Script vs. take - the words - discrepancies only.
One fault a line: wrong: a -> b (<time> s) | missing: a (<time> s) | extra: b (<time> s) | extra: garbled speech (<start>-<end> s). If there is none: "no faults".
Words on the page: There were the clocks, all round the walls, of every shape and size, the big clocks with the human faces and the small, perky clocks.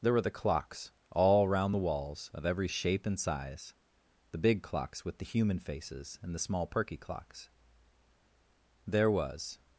extra: There was (8.9 s)